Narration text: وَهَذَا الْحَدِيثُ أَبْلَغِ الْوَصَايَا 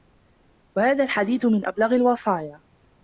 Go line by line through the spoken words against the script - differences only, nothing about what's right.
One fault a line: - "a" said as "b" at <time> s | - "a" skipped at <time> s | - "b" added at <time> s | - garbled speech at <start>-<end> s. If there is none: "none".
- "مِنْ" added at 1.4 s